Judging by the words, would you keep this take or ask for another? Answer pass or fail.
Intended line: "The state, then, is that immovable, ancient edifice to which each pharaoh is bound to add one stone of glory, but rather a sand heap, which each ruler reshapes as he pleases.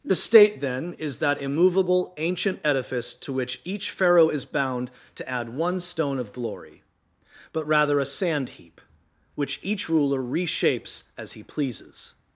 pass